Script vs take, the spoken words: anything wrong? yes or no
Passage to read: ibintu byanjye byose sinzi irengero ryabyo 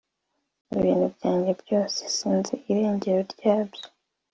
no